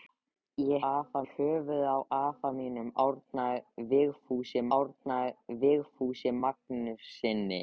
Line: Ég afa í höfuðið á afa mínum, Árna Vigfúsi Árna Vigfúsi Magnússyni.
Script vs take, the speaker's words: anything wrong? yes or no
no